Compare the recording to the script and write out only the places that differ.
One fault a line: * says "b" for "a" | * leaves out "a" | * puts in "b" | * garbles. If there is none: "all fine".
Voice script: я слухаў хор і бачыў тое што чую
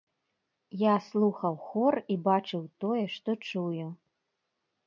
all fine